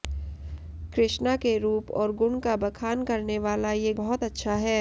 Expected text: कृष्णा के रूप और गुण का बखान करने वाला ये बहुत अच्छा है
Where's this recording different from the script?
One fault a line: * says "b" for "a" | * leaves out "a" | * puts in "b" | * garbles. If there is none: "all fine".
all fine